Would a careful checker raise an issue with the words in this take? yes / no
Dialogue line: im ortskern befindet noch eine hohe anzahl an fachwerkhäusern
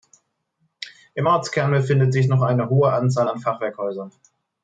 yes